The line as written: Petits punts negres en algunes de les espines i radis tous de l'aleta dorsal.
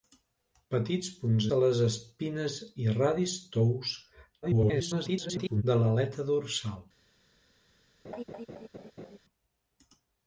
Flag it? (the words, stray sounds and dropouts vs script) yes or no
yes